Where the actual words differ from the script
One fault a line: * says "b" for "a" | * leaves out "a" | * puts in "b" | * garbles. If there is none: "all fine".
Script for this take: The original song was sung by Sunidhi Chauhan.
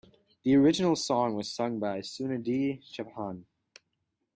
all fine